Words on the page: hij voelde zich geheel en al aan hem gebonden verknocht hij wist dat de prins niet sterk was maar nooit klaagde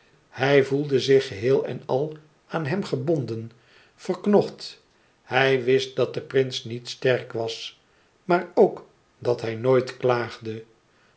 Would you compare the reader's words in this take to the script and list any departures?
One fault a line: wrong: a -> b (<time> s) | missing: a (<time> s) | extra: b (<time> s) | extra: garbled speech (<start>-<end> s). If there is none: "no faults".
extra: ook dat hij (8.5 s)